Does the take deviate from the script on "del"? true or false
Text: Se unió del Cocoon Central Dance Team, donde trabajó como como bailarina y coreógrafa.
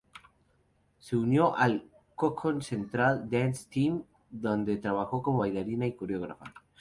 true